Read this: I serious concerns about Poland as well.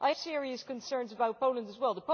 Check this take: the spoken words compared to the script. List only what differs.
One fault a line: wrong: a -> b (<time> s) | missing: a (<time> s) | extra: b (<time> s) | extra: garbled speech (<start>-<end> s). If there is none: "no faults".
no faults